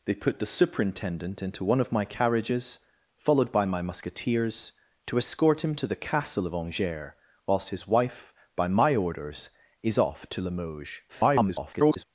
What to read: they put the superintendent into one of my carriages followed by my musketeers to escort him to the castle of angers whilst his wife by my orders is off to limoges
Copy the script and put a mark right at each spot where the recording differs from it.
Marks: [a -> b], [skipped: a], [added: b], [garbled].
they put the superintendent into one of my carriages followed by my musketeers to escort him to the castle of angers whilst his wife by my orders is off to limoges [garbled]